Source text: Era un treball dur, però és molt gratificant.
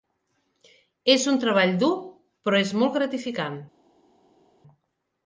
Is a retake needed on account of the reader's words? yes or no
yes